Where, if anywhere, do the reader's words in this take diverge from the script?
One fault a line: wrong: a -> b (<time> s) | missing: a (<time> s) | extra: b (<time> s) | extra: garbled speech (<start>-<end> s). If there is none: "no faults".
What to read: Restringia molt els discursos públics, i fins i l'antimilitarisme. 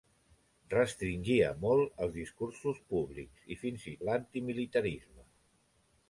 no faults